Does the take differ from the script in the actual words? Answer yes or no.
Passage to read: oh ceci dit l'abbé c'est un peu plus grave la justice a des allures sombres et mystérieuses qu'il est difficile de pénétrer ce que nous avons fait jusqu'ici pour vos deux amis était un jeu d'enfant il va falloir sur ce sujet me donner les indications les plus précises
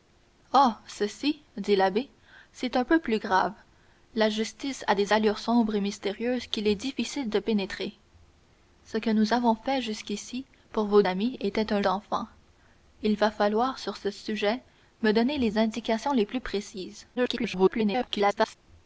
yes